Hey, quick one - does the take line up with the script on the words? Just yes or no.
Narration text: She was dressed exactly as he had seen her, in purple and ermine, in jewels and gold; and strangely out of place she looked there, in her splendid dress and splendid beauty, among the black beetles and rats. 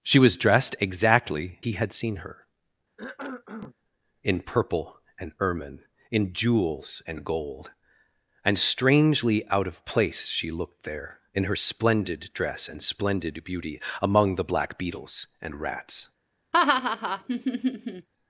no